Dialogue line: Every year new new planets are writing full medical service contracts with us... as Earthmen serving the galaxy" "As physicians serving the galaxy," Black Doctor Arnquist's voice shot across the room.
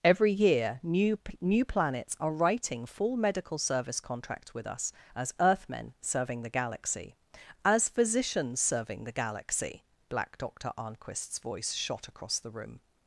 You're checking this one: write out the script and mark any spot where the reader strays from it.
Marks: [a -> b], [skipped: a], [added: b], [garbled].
Every year new new planets are writing full medical service contracts with us... as Earthmen serving the galaxy" "As physicians serving the galaxy," Black Doctor Arnquist's voice shot across the room.